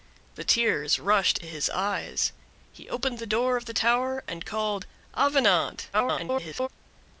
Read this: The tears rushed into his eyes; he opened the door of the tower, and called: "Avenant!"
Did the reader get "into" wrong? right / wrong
wrong